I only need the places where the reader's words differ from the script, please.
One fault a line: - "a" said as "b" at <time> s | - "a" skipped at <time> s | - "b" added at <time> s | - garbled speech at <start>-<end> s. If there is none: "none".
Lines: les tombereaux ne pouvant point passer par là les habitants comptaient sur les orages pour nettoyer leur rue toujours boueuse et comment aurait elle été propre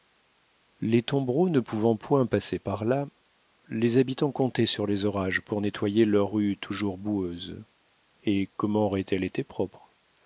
none